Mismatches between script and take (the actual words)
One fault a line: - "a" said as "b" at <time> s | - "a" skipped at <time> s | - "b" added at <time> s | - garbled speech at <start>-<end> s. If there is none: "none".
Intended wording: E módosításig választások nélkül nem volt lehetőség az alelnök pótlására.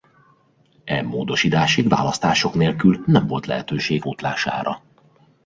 - "az alelnök" skipped at 4.0 s